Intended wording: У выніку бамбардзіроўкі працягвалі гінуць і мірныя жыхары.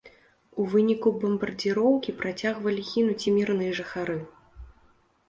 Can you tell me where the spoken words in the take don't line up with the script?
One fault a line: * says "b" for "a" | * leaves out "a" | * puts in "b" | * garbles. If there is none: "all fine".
all fine